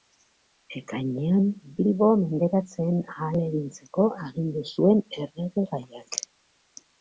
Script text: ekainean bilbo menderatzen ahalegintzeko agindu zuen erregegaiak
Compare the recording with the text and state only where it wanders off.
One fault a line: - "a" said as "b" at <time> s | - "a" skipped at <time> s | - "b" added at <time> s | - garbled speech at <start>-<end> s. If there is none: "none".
none